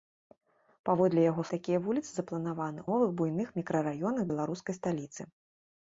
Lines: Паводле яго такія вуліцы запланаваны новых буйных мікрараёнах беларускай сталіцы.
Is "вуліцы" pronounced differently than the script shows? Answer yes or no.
no